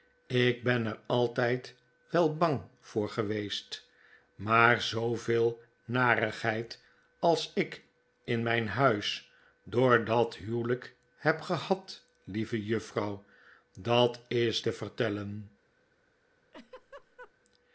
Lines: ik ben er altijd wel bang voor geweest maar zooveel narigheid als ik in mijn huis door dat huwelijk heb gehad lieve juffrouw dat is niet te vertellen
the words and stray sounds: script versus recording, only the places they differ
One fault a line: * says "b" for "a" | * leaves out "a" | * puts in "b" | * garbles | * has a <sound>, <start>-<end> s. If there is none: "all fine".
* leaves out "niet"
* has a laugh, 16.5-17.3 s